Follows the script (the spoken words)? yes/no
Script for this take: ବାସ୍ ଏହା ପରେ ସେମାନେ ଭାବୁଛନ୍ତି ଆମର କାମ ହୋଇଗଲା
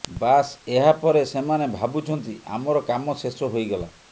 no